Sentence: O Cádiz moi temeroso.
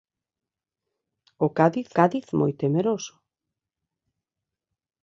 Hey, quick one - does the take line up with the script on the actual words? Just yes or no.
no